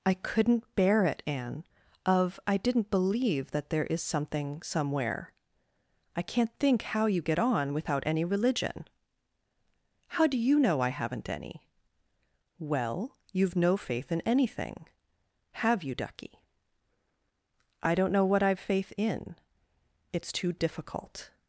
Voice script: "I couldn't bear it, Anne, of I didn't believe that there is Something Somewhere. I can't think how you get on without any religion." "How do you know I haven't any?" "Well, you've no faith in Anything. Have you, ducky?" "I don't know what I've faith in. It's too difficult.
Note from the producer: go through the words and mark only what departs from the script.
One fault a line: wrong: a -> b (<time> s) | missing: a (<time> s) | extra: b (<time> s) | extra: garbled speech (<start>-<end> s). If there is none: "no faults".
no faults